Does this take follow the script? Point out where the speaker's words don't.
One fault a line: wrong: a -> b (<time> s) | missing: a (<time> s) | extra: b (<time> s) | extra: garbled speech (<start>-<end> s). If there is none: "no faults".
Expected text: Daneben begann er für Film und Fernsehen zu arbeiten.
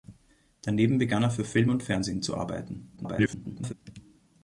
extra: garbled speech (3.0-3.7 s)